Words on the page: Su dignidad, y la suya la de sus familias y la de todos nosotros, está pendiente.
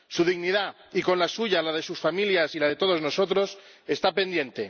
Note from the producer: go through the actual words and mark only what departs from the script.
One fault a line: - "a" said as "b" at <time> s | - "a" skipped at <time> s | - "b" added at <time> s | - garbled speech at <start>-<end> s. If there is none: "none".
- "con" added at 1.0 s